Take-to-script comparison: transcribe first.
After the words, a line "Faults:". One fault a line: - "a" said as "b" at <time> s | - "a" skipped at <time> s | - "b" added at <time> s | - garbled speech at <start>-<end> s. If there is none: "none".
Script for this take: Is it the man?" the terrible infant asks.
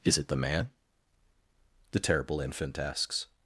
Is it the man?" the terrible infant asks.
Faults:
none